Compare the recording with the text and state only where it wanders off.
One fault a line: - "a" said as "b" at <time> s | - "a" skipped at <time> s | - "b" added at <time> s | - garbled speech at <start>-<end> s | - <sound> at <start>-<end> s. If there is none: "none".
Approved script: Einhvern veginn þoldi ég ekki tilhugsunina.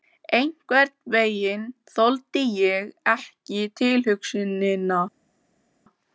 none